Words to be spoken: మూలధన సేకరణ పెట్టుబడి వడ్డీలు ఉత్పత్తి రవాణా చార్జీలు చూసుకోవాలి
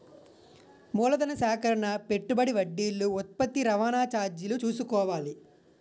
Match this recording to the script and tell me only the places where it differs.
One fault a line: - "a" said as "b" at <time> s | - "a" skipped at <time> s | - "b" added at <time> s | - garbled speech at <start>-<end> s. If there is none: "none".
none